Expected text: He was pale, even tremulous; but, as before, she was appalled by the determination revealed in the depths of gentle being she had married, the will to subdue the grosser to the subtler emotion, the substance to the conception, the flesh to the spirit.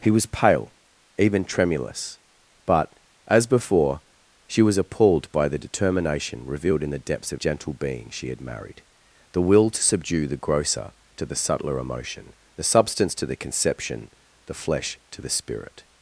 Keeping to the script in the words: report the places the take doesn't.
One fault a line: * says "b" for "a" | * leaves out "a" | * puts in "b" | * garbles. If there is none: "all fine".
all fine